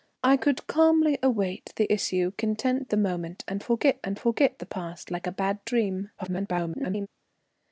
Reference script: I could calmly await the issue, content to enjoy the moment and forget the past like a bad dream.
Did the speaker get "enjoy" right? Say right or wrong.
wrong